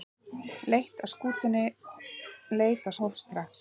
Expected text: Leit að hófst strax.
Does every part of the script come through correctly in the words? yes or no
yes